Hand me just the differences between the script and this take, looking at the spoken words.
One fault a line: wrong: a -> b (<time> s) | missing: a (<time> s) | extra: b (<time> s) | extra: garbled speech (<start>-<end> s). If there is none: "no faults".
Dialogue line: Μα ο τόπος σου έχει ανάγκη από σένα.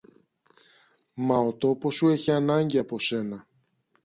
no faults